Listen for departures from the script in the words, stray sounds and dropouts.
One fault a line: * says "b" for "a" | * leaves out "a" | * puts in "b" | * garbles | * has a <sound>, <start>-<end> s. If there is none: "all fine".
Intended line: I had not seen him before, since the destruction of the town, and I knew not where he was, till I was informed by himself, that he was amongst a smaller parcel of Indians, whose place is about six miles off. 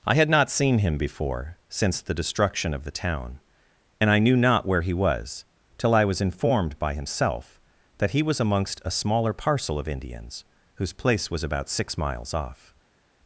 * says "was" for "is"